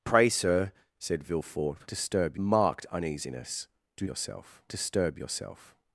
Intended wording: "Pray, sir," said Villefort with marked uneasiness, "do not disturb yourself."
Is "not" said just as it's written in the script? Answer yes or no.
no